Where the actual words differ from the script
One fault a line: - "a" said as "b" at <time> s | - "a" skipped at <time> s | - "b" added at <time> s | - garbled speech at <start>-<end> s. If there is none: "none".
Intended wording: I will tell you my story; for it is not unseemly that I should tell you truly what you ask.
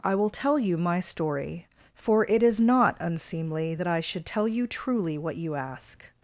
none